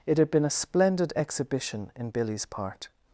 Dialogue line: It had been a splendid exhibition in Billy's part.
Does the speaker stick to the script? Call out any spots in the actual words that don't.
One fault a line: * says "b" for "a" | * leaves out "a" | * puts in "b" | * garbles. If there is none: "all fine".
all fine